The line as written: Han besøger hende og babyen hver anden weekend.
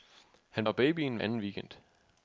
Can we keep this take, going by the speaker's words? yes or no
no